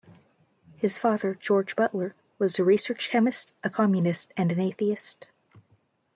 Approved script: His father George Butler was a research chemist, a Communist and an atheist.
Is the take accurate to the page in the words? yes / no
yes